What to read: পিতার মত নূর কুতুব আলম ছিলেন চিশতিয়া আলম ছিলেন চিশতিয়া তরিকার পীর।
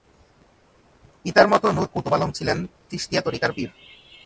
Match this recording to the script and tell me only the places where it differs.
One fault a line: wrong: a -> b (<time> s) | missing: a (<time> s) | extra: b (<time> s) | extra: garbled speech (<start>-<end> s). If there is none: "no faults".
missing: আলম ছিলেন চিশতিয়া (3.2 s)